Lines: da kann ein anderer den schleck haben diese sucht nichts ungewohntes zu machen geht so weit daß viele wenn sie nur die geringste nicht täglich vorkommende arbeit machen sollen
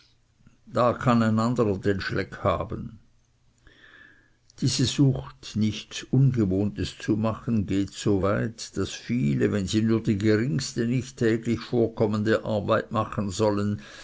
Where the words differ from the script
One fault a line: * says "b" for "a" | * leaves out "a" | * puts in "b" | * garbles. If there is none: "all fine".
all fine